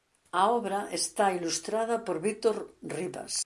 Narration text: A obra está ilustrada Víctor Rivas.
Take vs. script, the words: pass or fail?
fail